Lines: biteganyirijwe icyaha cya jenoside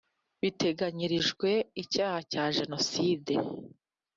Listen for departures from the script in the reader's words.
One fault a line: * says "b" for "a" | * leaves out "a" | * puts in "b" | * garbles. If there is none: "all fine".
all fine